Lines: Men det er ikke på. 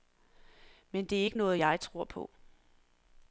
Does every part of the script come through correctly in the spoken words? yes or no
no